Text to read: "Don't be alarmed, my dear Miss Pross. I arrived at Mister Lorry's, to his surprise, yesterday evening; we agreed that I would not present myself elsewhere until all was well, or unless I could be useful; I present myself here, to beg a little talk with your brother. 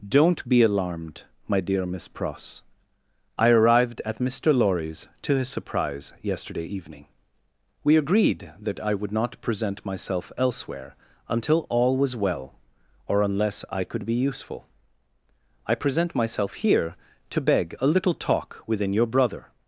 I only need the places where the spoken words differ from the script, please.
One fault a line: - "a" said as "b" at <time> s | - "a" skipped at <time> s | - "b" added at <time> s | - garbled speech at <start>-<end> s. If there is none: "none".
- "with" said as "within" at 18.6 s